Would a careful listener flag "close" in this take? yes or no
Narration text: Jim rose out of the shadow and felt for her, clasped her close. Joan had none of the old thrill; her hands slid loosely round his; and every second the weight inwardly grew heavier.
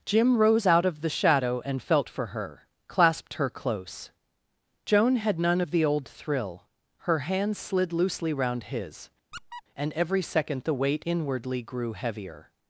no